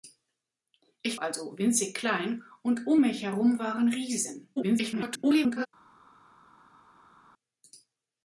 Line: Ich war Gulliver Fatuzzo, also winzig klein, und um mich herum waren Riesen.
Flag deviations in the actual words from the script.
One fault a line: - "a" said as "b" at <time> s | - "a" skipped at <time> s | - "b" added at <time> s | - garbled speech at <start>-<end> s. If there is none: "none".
- "war Gulliver Fatuzzo" skipped at 1.2 s
- garbled speech at 4.6-5.7 s